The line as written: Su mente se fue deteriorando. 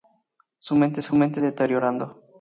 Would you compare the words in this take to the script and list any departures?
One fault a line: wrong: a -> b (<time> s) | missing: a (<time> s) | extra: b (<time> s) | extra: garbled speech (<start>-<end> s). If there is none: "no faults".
wrong: fue -> mente (1.1 s)